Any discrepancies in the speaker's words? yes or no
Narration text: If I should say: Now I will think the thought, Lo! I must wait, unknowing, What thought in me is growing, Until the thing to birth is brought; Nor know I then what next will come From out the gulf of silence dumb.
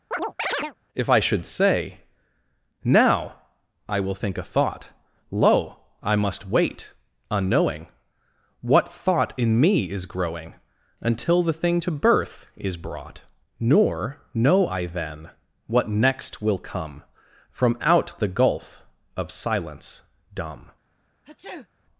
yes